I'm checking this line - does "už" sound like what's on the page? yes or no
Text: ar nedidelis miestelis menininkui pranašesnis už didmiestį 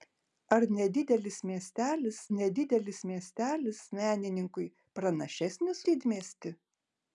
no